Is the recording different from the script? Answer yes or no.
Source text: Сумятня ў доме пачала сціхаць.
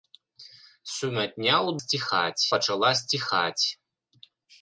yes